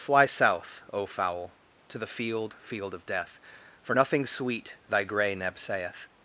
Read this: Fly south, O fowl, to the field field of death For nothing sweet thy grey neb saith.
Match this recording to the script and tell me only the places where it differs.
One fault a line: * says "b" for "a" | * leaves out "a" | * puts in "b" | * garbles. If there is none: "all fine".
all fine